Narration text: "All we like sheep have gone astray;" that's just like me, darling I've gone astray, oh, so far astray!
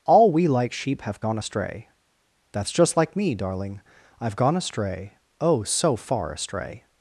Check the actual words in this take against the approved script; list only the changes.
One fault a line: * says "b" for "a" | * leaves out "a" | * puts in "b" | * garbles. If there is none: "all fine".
all fine